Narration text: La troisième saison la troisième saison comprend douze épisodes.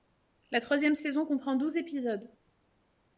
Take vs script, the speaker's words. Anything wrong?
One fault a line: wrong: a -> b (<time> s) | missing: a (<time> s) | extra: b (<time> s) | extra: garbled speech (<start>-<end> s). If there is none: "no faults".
missing: la troisième saison (1.3 s)